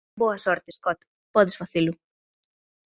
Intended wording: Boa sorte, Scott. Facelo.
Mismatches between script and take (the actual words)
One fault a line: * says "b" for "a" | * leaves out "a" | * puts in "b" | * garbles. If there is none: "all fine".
* puts in "Podes"